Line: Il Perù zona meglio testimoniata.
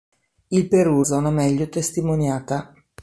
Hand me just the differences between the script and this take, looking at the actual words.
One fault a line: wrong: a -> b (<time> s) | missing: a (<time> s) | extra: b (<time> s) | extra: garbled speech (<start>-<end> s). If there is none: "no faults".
no faults